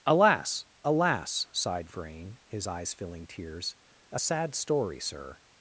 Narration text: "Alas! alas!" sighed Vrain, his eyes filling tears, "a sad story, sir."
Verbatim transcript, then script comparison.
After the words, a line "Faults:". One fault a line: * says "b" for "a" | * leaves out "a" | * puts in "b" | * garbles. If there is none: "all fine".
"Alas! alas!" sighed Vrain, his eyes filling tears, "a sad story, sir."
Faults:
all fine